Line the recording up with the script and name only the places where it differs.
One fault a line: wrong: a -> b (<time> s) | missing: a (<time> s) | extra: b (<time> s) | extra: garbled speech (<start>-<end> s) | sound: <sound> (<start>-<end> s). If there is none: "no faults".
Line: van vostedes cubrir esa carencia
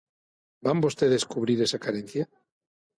no faults